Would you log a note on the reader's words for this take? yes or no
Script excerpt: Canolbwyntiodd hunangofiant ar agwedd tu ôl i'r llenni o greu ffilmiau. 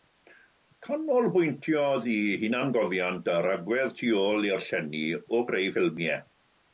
yes